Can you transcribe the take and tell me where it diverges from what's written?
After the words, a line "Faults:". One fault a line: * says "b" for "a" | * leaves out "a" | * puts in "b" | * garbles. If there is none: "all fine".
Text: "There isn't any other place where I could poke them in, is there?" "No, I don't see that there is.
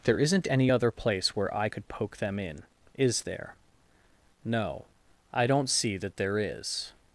"There isn't any other place where I could poke them in, is there?" "No, I don't see that there is.
Faults:
all fine